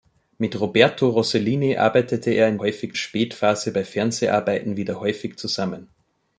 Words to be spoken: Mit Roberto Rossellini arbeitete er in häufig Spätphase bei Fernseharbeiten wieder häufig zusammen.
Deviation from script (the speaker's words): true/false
false